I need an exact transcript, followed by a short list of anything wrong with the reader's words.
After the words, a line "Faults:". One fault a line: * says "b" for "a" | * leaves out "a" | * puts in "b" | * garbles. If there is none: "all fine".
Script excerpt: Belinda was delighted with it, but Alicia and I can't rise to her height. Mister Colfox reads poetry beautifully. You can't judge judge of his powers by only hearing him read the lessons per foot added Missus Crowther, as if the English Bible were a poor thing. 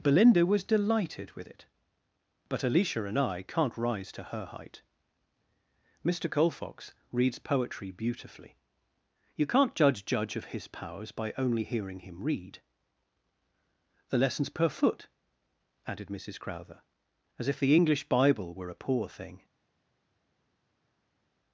Belinda was delighted with it, but Alicia and I can't rise to her height. Mister Colfox reads poetry beautifully. You can't judge judge of his powers by only hearing him read the lessons per foot added Missus Crowther, as if the English Bible were a poor thing.
Faults:
all fine